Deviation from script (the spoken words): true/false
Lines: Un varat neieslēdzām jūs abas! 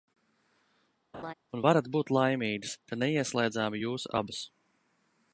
true